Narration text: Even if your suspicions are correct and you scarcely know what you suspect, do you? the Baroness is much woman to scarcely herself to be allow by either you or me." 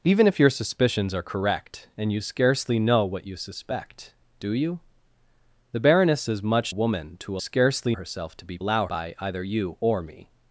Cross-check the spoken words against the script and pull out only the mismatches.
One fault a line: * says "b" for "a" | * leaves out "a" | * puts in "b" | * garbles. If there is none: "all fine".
all fine